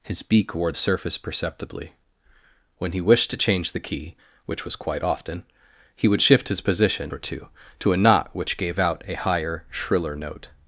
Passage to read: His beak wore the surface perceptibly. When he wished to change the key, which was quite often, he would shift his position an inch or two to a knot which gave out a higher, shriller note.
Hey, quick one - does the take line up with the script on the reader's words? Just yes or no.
no